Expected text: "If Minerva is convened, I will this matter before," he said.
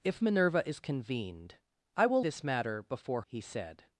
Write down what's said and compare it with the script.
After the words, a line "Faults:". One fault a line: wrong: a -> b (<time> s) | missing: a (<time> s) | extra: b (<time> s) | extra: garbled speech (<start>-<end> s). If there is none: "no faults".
"If Minerva is convened, I will this matter before," he said.
Faults:
no faults